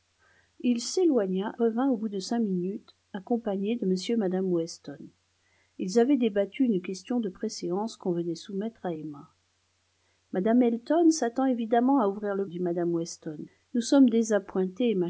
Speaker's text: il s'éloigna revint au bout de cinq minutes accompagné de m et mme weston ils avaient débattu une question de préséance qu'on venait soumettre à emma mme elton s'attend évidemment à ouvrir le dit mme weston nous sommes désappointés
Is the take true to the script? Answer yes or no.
yes